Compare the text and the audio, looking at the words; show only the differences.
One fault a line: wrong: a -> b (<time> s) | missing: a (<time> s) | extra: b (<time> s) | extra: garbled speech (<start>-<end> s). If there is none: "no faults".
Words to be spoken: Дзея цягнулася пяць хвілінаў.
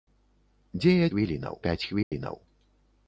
wrong: цягнулася -> хвілінаў (1.1 s)